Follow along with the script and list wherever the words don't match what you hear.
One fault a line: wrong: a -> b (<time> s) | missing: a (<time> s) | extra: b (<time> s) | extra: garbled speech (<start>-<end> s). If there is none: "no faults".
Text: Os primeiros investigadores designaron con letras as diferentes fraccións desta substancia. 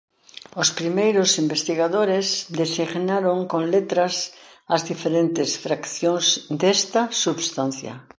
no faults